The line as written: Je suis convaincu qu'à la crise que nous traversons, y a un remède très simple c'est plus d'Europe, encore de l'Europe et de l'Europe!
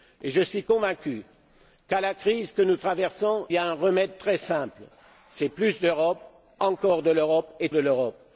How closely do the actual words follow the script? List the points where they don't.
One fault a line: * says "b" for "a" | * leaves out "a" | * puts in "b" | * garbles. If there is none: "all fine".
all fine